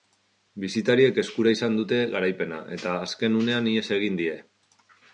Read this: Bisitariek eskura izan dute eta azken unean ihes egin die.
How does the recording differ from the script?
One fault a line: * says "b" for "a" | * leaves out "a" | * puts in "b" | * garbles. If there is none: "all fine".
* puts in "garaipena"